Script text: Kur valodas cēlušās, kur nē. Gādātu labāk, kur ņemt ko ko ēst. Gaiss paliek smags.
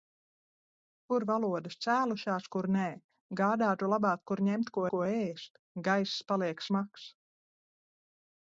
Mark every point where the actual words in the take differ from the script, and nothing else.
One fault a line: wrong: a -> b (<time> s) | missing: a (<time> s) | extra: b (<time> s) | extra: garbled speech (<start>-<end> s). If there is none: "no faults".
no faults